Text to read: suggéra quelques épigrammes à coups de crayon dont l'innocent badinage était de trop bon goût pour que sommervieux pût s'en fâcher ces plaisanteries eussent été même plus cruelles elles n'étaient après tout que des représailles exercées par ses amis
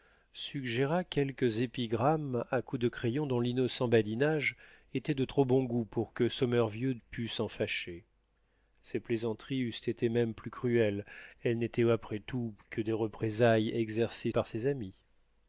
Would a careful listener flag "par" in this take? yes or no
no